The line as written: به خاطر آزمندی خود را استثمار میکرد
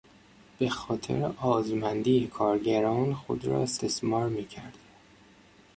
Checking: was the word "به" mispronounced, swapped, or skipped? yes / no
no